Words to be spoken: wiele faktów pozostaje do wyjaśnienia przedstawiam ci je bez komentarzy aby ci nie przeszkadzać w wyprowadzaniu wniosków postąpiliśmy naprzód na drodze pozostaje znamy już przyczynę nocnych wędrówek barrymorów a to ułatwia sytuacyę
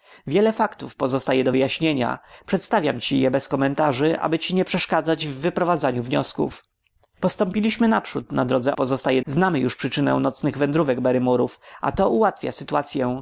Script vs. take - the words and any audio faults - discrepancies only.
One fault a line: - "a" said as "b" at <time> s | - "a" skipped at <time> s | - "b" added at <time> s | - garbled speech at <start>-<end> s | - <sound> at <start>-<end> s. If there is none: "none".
none